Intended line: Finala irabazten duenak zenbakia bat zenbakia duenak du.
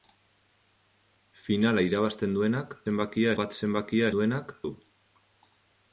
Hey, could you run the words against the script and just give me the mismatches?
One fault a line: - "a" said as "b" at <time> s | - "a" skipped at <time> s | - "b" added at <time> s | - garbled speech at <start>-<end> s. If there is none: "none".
none